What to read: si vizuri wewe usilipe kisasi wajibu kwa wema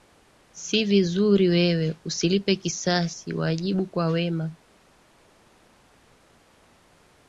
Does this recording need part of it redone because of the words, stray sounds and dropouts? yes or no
no